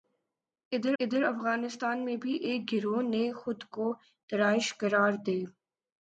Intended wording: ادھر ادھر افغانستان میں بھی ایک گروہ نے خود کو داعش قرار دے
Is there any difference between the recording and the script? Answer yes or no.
no